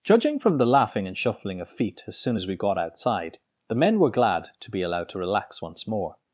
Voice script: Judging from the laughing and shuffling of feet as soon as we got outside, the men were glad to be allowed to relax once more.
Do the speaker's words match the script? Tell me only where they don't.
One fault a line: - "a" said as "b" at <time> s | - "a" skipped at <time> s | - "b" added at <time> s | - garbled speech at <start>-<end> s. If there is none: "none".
none